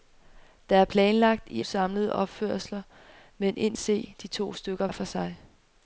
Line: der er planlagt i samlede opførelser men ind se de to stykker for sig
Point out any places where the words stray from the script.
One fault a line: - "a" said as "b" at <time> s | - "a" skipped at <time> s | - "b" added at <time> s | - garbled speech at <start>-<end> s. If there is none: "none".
none